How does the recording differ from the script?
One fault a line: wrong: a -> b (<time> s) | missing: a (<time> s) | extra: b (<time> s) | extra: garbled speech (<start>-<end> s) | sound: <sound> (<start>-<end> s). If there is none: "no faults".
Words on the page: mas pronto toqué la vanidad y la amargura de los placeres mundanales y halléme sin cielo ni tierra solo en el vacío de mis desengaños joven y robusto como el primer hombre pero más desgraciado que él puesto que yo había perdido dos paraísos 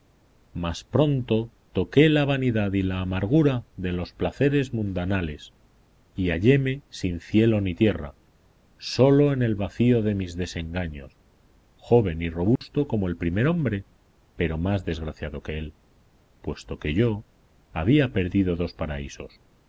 sound: dropout (12.6-12.6 s)